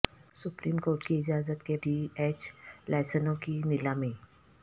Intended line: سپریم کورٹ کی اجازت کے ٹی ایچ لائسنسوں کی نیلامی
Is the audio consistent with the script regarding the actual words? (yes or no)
yes